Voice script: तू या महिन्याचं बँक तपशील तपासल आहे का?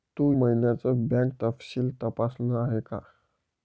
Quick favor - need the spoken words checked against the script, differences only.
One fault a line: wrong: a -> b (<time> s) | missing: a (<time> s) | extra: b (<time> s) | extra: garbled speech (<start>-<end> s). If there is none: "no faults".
missing: या (0.3 s)